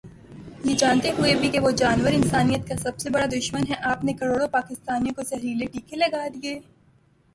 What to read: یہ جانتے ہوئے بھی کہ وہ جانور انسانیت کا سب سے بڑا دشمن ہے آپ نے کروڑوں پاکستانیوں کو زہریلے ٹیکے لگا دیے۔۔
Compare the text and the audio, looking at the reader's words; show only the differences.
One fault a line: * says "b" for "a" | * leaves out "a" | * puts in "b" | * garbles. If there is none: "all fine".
all fine